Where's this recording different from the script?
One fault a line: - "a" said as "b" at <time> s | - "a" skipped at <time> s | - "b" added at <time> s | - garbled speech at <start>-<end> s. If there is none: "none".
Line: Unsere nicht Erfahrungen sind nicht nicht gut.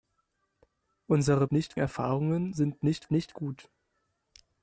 none